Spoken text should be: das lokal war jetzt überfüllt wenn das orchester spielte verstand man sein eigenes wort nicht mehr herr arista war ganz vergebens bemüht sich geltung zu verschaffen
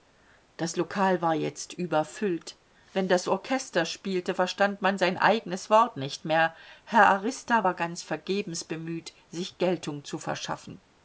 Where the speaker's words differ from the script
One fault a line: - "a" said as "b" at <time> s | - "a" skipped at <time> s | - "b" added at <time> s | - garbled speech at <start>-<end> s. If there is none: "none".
none